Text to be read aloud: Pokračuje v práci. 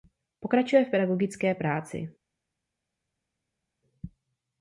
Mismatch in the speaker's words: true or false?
true